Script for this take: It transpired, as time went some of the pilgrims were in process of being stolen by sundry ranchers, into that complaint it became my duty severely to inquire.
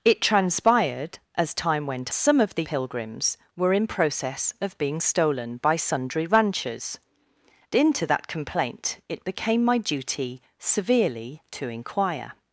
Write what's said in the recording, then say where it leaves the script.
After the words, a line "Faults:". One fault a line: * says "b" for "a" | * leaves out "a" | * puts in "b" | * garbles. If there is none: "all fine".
It transpired, as time went some of the pilgrims were in process of being stolen by sundry ranchers, into that complaint it became my duty severely to inquire.
Faults:
all fine